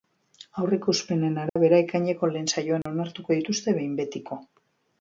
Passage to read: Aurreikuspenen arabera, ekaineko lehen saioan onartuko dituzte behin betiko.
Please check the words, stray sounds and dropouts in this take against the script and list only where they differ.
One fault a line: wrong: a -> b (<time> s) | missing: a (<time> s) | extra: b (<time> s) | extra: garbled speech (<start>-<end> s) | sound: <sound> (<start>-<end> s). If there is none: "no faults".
sound: dropout (1.5-1.6 s)
sound: dropout (2.8-2.9 s)